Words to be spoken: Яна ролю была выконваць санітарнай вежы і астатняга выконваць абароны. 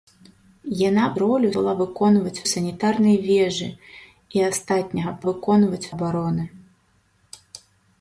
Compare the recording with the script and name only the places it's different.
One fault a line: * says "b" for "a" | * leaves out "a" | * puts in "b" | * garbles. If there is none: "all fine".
all fine